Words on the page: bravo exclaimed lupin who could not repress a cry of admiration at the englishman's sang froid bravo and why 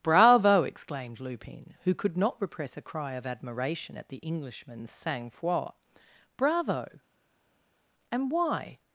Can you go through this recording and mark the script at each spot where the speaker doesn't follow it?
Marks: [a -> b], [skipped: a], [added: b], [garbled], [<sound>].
bravo exclaimed lupin who could not repress a cry of admiration at the englishman's sang froid bravo and why